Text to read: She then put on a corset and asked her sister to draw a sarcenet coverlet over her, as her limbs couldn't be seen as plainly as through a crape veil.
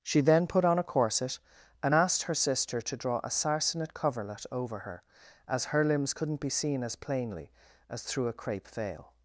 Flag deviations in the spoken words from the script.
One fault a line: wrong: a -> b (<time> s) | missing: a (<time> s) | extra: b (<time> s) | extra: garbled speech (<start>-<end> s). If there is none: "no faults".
no faults